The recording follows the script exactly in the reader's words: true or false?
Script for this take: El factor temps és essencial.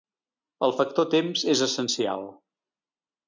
true